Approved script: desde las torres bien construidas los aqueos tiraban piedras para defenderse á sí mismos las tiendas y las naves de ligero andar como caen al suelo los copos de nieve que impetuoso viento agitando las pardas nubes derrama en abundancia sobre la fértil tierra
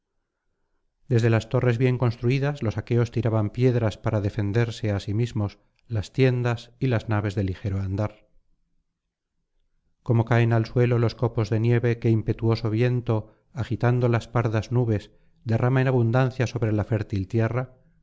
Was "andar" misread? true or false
false